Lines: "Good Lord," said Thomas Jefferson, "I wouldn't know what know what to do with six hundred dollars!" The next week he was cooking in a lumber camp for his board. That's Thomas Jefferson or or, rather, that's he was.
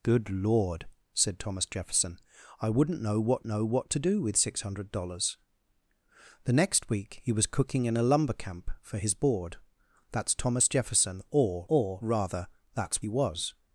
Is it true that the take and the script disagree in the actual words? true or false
false